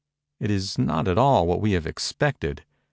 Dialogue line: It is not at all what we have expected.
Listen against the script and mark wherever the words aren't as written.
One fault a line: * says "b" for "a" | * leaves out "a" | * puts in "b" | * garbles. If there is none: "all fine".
all fine